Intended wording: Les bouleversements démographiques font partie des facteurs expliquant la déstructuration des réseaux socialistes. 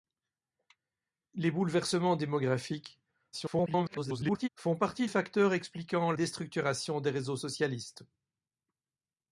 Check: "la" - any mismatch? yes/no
yes